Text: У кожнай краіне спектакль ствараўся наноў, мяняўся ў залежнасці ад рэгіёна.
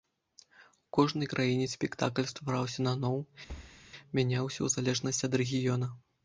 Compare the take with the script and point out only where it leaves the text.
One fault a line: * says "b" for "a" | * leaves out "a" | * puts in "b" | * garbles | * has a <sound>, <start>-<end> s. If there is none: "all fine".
* has a thud, 3.5-3.8 s